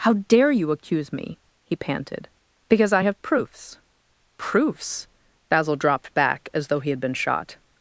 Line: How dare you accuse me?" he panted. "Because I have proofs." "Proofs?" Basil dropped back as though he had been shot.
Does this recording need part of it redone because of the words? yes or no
no